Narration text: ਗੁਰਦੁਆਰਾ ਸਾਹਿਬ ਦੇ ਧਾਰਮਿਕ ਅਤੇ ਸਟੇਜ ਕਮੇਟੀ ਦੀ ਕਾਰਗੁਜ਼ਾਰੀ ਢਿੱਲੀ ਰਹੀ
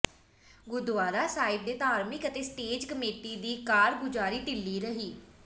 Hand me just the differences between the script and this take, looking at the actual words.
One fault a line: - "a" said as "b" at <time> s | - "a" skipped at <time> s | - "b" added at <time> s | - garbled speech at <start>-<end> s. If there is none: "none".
none